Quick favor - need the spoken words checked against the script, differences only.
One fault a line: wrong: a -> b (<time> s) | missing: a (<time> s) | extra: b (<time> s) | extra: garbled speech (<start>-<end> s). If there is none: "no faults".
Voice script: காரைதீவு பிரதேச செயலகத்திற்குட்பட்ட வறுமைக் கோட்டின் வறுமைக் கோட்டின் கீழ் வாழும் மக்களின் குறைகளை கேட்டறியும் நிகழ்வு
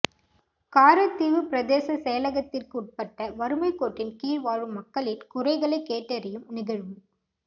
missing: வறுமைக் கோட்டின் (4.2 s)